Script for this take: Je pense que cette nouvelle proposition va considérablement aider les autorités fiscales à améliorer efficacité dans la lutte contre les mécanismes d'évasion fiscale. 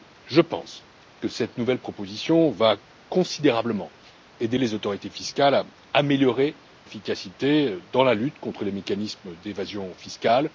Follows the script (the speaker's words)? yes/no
yes